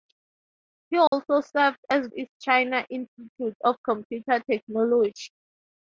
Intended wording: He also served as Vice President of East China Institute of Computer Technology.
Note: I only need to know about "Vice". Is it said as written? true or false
false